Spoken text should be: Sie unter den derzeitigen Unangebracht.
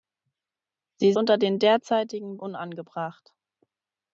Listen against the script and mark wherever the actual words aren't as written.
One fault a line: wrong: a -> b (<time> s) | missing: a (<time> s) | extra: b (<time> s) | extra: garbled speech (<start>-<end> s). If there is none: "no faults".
no faults